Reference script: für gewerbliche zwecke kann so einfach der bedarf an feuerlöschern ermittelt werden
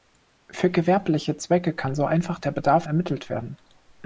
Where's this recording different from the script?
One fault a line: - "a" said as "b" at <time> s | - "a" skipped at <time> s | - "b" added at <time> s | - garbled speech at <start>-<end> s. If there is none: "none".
- "an feuerlöschern" skipped at 2.9 s